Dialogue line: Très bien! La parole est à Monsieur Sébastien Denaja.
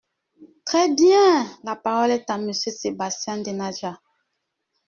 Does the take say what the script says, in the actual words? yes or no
yes